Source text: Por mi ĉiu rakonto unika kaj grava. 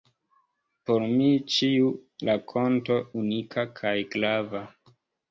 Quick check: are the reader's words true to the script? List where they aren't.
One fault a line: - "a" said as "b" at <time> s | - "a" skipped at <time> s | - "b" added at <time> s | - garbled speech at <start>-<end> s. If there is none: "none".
none